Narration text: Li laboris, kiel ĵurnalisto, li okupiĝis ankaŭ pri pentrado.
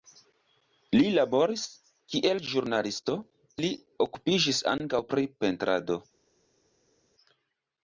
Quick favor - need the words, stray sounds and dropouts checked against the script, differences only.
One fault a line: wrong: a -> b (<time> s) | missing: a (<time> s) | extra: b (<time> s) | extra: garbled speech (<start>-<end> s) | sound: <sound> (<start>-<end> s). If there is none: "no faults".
no faults